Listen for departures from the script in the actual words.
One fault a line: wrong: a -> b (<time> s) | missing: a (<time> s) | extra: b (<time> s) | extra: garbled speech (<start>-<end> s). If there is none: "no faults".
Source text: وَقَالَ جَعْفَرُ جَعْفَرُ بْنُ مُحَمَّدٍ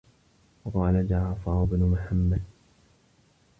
missing: جَعْفَرُ (1.6 s)